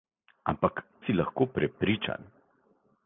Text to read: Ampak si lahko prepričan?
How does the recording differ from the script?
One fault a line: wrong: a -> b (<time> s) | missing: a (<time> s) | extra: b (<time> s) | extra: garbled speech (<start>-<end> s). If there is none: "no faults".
no faults